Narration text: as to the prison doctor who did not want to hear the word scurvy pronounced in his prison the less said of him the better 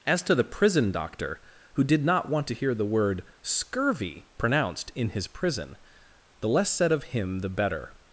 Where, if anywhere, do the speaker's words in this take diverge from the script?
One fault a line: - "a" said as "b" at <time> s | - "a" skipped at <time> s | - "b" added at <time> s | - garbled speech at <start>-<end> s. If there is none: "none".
none